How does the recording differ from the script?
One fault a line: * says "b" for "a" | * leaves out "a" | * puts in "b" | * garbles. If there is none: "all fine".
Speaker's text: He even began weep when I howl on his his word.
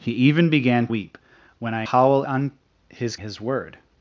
all fine